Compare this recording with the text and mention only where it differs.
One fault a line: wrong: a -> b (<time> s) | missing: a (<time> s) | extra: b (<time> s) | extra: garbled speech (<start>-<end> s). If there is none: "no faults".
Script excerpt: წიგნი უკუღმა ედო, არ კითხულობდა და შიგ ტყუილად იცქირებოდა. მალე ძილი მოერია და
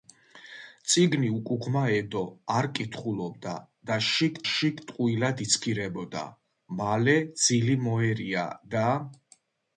extra: შიგ (4.5 s)